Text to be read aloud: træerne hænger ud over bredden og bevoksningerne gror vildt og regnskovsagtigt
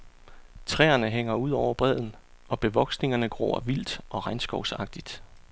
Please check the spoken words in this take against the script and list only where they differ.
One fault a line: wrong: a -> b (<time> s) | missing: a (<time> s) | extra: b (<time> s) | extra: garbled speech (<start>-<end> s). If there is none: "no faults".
no faults